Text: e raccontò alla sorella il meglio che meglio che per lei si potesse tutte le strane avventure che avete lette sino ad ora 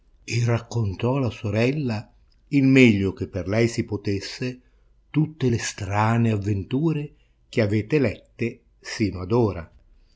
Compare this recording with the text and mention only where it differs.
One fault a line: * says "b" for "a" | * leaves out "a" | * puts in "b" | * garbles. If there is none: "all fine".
* leaves out "meglio che"